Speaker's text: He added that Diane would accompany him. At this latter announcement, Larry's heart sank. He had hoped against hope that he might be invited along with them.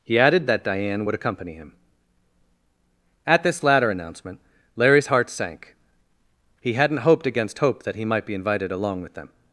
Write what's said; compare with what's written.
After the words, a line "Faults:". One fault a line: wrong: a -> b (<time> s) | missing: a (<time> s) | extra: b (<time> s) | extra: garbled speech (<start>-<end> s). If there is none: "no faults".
He added that Diane would accompany him. At this latter announcement, Larry's heart sank. He hadn't hoped against hope that he might be invited along with them.
Faults:
wrong: had -> hadn't (6.7 s)